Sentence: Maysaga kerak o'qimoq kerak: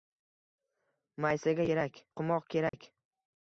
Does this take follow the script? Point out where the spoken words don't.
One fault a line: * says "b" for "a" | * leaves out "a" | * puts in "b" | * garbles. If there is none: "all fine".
all fine